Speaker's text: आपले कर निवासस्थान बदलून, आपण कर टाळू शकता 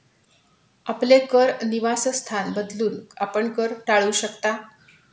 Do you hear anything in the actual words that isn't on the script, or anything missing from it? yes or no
no